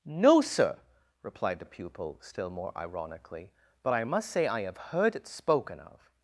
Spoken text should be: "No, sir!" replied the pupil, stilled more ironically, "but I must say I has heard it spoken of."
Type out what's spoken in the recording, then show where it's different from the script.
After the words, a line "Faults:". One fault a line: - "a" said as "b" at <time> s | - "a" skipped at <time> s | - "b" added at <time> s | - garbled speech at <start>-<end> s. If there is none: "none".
"No, sir!" replied the pupil, still more ironically, "but I must say I have heard it spoken of."
Faults:
- "stilled" said as "still" at 2.2 s
- "has" said as "have" at 4.6 s